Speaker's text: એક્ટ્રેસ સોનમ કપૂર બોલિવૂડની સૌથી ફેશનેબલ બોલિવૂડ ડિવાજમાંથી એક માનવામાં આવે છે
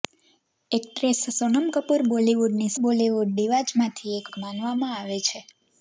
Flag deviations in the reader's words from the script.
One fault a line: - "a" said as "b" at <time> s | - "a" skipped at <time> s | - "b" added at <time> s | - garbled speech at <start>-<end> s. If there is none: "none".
- "સૌથી ફેશનેબલ" skipped at 2.7 s
- "એક" added at 4.3 s